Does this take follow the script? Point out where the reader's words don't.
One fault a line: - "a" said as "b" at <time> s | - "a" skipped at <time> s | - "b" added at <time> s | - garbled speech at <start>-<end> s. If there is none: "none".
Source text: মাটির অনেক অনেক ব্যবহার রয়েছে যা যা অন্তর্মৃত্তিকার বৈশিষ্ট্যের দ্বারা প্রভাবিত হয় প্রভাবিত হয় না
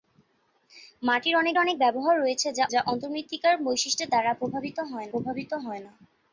none